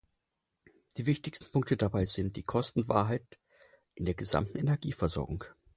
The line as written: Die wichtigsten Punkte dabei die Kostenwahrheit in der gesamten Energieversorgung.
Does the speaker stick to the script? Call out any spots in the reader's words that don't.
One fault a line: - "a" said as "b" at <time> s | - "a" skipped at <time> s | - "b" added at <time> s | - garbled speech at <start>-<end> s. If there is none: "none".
- "sind" added at 2.0 s